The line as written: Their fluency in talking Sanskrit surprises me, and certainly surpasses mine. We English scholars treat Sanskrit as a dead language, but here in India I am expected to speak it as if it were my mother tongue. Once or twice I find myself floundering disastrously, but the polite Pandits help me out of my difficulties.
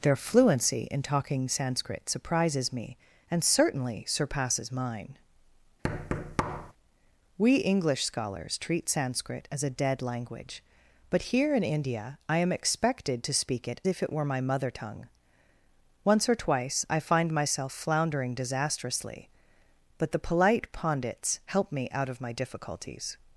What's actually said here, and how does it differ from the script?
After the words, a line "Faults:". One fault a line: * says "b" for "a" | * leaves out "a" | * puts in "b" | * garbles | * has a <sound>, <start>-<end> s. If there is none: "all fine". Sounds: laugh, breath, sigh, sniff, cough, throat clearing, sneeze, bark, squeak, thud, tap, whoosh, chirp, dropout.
Their fluency in talking Sanskrit surprises me, and certainly surpasses mine. We English scholars treat Sanskrit as a dead language, but here in India I am expected to speak it if it were my mother tongue. Once or twice I find myself floundering disastrously, but the polite Pandits help me out of my difficulties.
Faults:
* has a thud, 5.8-6.7 s
* leaves out "as"